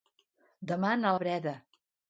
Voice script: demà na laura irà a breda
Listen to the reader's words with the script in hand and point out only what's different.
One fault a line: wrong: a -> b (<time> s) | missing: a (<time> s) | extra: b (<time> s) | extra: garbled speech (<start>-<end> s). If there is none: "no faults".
missing: laura irà (1.1 s)